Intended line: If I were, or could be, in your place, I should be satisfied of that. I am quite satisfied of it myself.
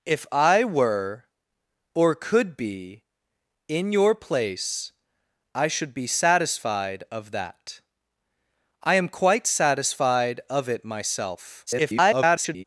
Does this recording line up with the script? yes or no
no